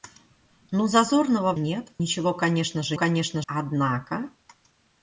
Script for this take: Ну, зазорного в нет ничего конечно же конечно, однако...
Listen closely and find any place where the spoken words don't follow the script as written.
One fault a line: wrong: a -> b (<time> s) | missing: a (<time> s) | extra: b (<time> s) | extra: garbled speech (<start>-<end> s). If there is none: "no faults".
no faults